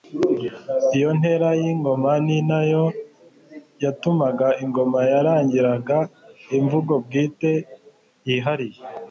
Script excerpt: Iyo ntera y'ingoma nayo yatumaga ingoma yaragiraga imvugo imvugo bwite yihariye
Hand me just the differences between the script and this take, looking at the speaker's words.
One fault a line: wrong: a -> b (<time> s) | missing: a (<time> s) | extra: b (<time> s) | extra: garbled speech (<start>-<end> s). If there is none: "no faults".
extra: ni (2.2 s)
missing: imvugo (6.9 s)